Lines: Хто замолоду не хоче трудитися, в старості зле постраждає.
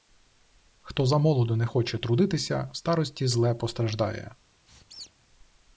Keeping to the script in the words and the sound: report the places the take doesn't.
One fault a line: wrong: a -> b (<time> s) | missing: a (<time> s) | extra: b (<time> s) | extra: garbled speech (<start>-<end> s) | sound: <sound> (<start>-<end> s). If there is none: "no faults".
sound: squeak (4.7-5.1 s)